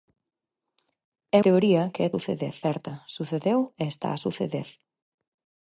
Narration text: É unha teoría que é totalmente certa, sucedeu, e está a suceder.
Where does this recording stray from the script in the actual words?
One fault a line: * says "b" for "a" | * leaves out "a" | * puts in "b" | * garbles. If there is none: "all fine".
* leaves out "unha"
* says "suceder" for "totalmente"